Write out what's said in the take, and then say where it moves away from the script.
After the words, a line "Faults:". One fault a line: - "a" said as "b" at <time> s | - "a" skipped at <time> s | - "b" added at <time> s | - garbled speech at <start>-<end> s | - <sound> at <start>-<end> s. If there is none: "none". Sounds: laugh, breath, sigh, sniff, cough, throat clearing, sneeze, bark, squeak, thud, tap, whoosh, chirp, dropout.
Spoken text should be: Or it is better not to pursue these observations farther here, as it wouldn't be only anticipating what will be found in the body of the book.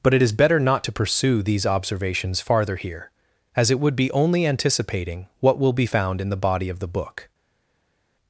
But it is better not to pursue these observations farther here, as it would be only anticipating what will be found in the body of the book.
Faults:
- "Or" said as "But" at 0.0 s
- "wouldn't" said as "would" at 3.8 s